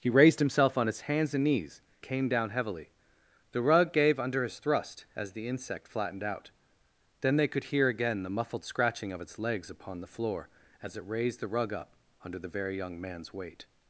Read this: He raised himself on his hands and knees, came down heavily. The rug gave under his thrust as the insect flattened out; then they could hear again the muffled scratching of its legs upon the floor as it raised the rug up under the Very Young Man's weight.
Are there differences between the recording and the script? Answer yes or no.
no